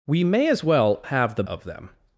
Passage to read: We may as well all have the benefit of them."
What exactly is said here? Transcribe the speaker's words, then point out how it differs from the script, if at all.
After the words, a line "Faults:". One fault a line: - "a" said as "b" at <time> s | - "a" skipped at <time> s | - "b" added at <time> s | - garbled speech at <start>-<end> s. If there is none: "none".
We may as well have the of them."
Faults:
- "all" skipped at 1.0 s
- "benefit" skipped at 1.4 s